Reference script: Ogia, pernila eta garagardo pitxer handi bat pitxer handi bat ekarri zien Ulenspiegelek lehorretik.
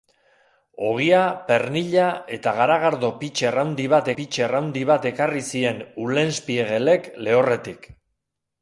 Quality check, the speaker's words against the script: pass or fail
pass